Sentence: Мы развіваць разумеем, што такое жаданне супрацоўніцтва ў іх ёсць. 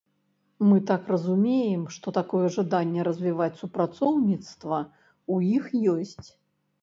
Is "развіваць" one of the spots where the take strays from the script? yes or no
yes